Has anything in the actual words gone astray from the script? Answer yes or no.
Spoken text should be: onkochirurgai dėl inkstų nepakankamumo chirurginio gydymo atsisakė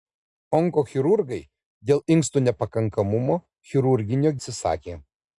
yes